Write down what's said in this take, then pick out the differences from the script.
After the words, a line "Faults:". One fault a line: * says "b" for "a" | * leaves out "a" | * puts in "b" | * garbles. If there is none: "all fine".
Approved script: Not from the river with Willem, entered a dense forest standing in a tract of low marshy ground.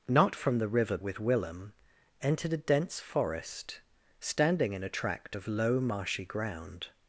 Not from the river with Willem, entered a dense forest standing in a tract of low marshy ground.
Faults:
all fine